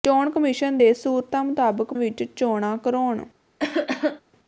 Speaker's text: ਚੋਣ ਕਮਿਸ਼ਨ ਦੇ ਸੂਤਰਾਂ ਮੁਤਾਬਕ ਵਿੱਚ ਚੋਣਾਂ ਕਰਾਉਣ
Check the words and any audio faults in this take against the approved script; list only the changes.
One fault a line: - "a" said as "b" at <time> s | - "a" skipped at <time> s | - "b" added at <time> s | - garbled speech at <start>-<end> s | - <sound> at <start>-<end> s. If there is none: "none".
- cough at 3.6-4.2 s